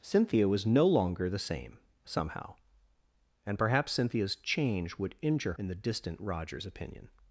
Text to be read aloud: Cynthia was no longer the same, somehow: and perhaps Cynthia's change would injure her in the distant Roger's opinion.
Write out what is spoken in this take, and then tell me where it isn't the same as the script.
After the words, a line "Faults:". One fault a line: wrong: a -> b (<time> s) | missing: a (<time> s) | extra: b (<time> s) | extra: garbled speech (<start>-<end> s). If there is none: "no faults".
Cynthia was no longer the same, somehow: and perhaps Cynthia's change would injure in the distant Roger's opinion.
Faults:
missing: her (5.5 s)